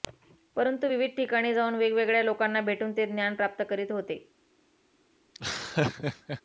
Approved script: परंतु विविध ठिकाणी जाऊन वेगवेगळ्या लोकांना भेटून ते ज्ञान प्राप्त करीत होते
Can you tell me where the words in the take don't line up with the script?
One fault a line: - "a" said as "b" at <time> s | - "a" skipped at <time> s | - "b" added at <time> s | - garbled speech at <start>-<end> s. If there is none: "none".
none